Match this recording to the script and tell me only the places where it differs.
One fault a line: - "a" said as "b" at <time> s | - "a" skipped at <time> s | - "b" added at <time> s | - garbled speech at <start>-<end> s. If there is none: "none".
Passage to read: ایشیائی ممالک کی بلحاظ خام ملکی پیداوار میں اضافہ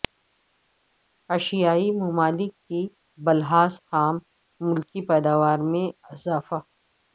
none